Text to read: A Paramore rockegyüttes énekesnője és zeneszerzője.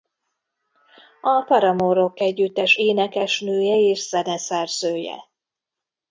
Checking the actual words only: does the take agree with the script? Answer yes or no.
yes